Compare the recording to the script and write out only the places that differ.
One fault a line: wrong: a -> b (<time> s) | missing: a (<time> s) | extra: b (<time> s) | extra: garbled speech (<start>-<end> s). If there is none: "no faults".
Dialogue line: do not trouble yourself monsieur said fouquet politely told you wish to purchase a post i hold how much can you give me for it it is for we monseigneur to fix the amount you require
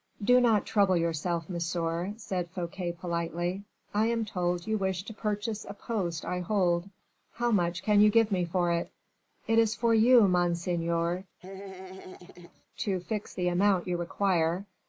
extra: i am (3.9 s)
wrong: we -> you (9.9 s)